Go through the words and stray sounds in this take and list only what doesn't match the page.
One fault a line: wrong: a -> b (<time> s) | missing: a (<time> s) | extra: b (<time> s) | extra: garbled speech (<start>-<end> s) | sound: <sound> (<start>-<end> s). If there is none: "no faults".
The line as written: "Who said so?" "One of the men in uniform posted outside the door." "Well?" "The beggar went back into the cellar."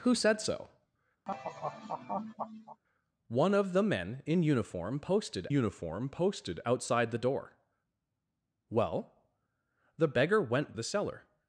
sound: laugh (1.3-2.8 s)
extra: uniform posted (5.5 s)
missing: back into (10.7 s)